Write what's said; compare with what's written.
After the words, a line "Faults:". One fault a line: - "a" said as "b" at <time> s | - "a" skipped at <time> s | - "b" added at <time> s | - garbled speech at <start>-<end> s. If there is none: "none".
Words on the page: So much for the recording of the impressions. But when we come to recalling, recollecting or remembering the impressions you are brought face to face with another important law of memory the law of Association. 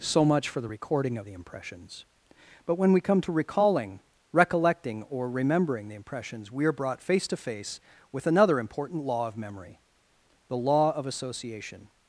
So much for the recording of the impressions. But when we come to recalling, recollecting or remembering the impressions we are brought face to face with another important law of memory the law of Association.
Faults:
- "you" said as "we" at 6.5 s